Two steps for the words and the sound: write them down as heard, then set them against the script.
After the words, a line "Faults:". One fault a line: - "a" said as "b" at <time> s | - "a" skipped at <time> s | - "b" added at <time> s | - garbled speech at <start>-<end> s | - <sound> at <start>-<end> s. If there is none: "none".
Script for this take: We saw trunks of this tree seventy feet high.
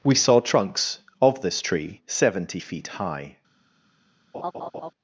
We saw trunks of this tree seventy feet high.
Faults:
- laugh at 4.3-4.9 s